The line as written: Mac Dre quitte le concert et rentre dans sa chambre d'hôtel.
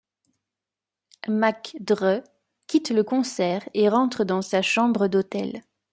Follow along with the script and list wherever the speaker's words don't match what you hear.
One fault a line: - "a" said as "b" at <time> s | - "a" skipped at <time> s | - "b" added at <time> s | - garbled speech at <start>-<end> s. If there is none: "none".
none